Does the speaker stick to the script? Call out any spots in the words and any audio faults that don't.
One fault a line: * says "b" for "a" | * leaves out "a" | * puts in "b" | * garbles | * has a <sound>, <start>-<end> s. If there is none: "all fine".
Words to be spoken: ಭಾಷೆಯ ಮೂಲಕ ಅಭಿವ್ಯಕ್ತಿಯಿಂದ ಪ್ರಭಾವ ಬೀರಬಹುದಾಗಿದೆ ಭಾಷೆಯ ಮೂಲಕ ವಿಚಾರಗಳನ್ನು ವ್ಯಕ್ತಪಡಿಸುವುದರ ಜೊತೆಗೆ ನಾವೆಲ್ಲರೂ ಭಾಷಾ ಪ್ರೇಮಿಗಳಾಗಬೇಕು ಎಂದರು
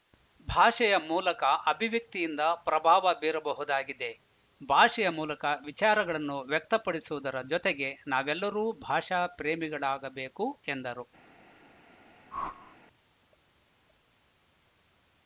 * has a whoosh, 12.3-12.8 s